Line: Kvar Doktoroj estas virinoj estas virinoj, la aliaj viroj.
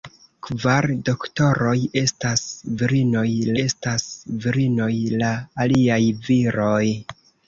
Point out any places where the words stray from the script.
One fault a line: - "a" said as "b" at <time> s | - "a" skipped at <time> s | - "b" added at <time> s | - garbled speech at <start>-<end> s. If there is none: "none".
none